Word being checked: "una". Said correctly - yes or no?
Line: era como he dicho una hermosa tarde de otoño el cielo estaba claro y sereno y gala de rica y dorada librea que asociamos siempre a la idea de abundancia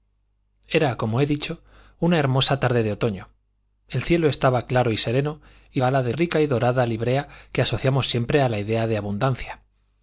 yes